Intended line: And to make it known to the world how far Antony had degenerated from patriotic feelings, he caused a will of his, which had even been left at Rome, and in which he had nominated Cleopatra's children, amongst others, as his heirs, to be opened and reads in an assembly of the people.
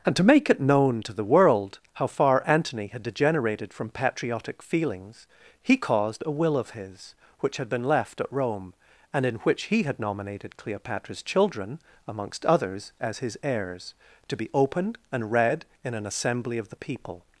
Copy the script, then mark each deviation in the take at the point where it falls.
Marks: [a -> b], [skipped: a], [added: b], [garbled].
And to make it known to the world how far Antony had degenerated from patriotic feelings, he caused a will of his, which had [skipped: even] been left at Rome, and in which he had nominated Cleopatra's children, amongst others, as his heirs, to be opened and [reads -> read] in an assembly of the people.